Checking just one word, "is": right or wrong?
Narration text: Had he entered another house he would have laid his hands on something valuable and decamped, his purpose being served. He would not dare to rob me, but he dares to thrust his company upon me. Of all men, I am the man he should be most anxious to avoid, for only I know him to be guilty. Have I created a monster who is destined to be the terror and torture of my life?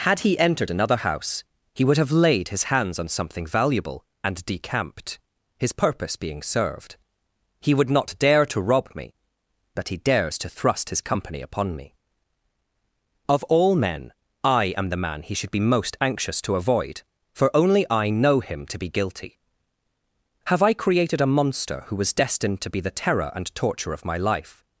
wrong